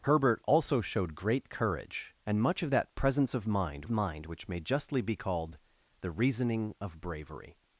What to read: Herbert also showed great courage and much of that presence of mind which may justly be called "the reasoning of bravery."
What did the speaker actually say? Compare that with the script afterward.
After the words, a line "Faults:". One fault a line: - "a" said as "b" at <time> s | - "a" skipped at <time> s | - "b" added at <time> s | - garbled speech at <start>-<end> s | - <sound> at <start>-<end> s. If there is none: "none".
Herbert also showed great courage and much of that presence of mind mind which may justly be called "the reasoning of bravery."
Faults:
- "mind" added at 3.9 s